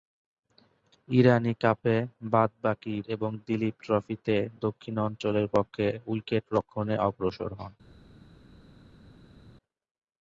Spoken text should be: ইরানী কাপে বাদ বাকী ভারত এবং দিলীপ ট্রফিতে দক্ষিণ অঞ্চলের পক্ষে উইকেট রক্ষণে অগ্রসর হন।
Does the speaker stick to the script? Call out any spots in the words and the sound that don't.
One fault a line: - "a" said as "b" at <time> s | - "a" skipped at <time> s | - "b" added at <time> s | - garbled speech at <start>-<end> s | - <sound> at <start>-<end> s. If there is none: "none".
- "ভারত" skipped at 3.0 s